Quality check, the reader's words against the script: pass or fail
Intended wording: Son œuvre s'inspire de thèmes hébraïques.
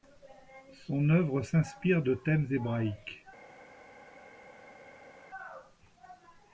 pass